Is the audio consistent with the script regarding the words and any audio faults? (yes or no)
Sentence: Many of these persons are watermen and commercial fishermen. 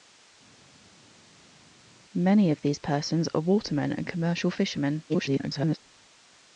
no